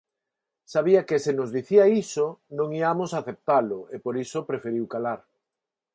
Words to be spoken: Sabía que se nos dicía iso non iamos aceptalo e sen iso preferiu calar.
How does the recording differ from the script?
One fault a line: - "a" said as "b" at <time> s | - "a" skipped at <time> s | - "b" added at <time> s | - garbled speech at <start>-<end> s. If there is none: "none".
- "sen" said as "por" at 4.0 s